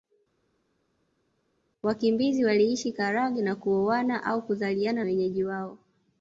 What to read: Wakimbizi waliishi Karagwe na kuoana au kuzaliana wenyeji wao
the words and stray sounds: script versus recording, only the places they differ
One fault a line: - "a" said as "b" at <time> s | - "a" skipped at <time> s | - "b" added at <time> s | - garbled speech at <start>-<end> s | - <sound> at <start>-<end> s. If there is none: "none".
none